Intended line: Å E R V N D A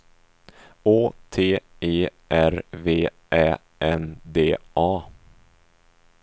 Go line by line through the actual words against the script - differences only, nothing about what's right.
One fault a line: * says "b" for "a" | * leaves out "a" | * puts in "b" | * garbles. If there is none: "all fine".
* puts in "T"
* puts in "Ä"